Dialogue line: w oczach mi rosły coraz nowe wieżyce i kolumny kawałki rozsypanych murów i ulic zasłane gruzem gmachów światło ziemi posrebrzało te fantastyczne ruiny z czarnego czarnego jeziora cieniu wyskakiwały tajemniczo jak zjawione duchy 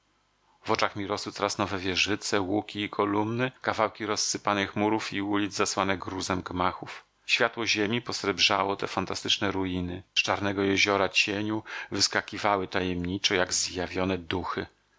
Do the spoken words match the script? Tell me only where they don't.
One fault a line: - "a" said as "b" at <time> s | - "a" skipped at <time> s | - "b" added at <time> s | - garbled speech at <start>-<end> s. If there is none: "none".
- "łuki" added at 2.4 s
- "czarnego" skipped at 10.6 s